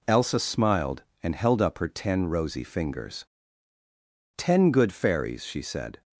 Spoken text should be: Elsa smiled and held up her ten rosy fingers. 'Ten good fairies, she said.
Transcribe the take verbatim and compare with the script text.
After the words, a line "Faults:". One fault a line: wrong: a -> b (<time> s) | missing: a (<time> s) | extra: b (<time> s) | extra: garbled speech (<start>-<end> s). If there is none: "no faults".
Elsa smiled and held up her ten rosy fingers. 'Ten good fairies, she said.
Faults:
no faults